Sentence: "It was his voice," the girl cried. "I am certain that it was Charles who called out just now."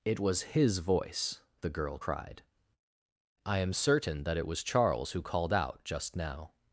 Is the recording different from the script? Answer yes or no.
no